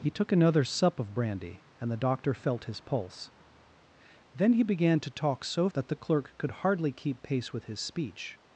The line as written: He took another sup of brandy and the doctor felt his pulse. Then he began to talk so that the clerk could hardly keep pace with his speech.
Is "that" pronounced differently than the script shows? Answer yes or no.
no